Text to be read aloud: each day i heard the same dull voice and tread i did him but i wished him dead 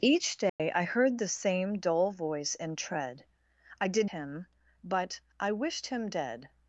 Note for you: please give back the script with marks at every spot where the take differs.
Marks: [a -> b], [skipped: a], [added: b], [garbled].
each day i heard the same dull voice and tread i did him but i wished him dead